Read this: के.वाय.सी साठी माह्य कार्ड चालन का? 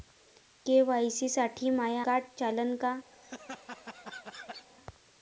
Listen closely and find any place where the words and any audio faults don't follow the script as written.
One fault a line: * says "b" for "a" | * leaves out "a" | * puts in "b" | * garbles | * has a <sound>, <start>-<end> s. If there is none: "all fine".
* has a laugh, 3.1-4.7 s